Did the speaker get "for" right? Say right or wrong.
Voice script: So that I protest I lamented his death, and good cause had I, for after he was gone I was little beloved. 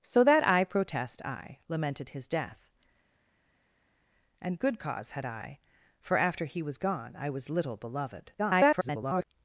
right